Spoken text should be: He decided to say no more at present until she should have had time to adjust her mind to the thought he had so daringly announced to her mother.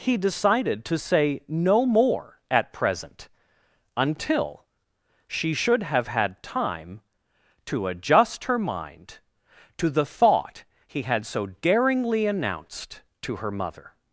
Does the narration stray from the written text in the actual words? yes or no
no